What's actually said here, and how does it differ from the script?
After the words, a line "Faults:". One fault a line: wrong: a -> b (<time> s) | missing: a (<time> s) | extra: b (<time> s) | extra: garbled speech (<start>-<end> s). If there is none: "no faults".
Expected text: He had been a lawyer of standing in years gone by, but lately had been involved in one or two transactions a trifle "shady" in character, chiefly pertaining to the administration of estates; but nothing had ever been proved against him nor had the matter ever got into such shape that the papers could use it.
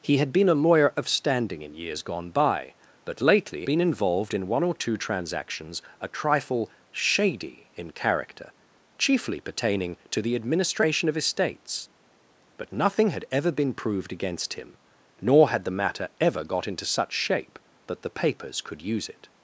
He had been a lawyer of standing in years gone by, but lately been involved in one or two transactions a trifle "shady" in character, chiefly pertaining to the administration of estates; but nothing had ever been proved against him nor had the matter ever got into such shape that the papers could use it.
Faults:
missing: had (3.7 s)